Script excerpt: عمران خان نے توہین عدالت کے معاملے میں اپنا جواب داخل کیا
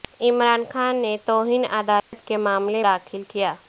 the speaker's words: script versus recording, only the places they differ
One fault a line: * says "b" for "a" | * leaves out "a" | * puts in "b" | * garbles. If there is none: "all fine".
* leaves out "میں اپنا جواب"